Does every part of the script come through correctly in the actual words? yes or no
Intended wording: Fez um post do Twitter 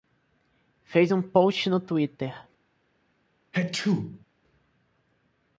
no